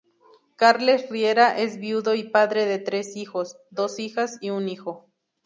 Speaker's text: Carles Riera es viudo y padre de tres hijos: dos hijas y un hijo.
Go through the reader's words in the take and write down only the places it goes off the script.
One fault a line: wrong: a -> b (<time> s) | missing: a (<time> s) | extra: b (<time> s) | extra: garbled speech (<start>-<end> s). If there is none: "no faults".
no faults